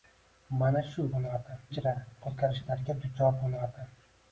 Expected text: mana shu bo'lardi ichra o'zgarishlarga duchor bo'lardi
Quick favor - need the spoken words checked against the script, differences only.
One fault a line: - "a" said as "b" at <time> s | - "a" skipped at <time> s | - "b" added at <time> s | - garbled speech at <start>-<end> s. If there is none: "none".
none